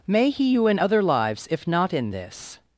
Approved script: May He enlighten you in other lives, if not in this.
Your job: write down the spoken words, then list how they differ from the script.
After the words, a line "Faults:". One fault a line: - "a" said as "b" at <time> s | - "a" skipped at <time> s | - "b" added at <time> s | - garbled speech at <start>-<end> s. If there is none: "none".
May He you in other lives, if not in this.
Faults:
- "enlighten" skipped at 0.5 s